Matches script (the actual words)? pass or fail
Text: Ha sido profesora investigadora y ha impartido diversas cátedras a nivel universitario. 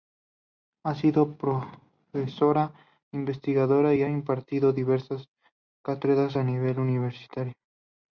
pass